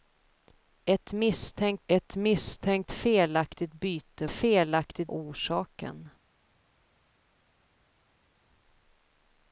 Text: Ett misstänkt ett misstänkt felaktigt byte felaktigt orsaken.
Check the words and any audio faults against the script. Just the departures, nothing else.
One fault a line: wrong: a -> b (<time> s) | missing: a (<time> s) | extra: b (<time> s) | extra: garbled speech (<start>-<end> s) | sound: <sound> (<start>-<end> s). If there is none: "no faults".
no faults